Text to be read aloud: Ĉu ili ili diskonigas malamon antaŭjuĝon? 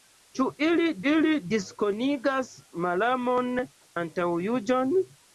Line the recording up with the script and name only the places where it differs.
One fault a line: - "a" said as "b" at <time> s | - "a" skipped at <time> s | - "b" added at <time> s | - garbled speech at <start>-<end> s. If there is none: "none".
none